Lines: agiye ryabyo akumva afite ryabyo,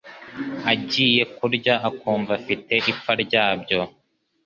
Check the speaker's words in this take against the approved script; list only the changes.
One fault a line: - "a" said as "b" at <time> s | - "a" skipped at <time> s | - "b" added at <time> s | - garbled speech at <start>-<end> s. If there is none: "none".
- "ryabyo" said as "kurya" at 1.4 s
- "ipfa" added at 2.9 s